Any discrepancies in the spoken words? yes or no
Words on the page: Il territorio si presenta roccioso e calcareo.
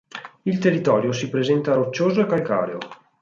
no